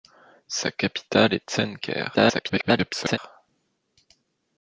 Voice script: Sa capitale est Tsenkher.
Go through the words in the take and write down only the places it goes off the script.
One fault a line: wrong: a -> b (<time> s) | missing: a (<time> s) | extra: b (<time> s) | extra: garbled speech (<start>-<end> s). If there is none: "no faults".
extra: garbled speech (2.1-3.2 s)